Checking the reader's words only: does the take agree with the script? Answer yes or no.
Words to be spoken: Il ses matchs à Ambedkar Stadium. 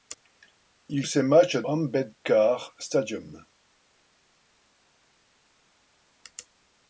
yes